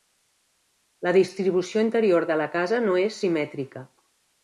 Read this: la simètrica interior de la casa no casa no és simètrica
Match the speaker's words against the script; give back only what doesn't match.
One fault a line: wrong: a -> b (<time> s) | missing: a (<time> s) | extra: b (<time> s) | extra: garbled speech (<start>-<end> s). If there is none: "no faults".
wrong: simètrica -> distribució (1.2 s)
missing: casa no (3.0 s)